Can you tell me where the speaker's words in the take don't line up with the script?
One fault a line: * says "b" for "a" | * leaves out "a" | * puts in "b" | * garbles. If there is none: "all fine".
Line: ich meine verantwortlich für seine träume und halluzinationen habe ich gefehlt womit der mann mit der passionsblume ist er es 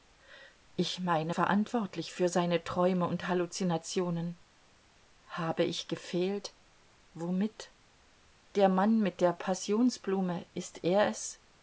all fine